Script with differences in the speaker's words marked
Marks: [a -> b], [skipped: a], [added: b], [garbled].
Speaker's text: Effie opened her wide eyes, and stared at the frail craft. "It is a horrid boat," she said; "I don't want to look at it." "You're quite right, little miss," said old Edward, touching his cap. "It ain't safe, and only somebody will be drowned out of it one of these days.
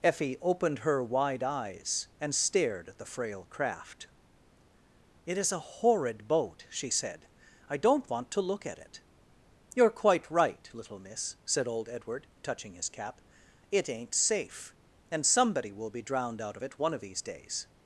Effie opened her wide eyes, and stared at the frail craft. "It is a horrid boat," she said; "I don't want to look at it." "You're quite right, little miss," said old Edward, touching his cap. "It ain't safe, and [skipped: only] somebody will be drowned out of it one of these days.